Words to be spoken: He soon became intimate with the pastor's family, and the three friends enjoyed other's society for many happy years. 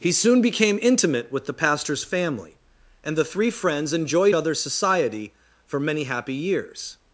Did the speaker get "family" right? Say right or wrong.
right